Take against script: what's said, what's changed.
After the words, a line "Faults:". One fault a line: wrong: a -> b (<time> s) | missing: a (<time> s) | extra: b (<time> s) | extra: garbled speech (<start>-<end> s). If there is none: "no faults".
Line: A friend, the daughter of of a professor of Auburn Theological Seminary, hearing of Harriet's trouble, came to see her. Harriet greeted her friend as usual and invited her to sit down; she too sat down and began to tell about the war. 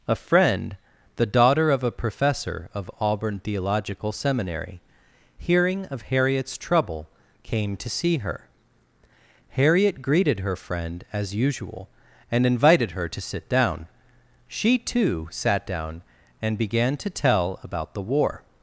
A friend, the daughter of a professor of Auburn Theological Seminary, hearing of Harriet's trouble, came to see her. Harriet greeted her friend as usual and invited her to sit down; she too sat down and began to tell about the war.
Faults:
missing: of (1.8 s)